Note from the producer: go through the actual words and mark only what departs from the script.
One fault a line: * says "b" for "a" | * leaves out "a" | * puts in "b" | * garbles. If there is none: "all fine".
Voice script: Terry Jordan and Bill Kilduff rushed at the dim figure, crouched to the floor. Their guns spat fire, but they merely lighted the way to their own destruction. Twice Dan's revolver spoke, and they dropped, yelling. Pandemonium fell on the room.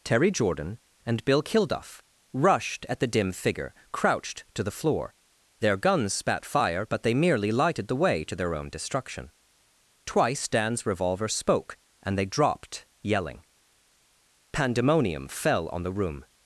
all fine